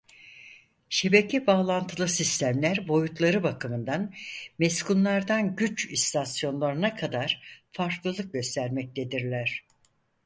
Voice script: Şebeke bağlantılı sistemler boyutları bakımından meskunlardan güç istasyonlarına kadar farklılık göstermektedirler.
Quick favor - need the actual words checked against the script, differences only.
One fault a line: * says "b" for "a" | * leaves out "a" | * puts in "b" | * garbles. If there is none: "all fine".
all fine